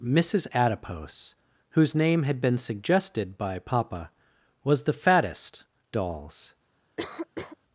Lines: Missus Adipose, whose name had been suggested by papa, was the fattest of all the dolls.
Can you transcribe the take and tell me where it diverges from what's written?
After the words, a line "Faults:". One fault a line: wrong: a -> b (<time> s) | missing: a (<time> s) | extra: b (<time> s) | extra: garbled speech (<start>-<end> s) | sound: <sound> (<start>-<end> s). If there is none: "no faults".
Missus Adipose, whose name had been suggested by papa, was the fattest dolls.
Faults:
missing: of all the (5.6 s)
sound: cough (7.0-7.6 s)